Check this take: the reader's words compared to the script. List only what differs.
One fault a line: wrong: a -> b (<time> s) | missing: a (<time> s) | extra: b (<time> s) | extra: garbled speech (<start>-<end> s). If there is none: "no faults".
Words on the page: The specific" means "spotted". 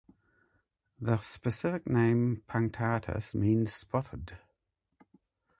extra: name punctatus (1.9 s)